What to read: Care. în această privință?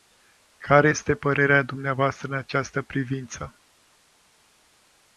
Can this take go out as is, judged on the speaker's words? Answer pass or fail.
fail